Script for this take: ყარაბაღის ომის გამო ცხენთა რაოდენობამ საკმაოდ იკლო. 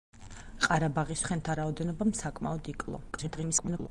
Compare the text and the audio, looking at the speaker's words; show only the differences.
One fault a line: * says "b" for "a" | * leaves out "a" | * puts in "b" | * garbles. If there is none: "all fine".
* leaves out "ომის გამო"
* garbles